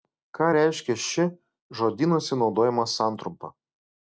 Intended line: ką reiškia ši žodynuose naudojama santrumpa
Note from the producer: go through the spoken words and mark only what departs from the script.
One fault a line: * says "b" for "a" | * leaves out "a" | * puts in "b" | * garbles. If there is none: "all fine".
all fine